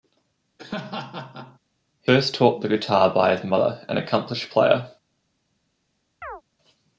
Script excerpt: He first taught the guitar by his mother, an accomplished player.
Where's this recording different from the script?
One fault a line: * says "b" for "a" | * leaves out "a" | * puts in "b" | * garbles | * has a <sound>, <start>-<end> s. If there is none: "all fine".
* has a laugh, 0.6-1.6 s
* has a chirp, 6.2-6.4 s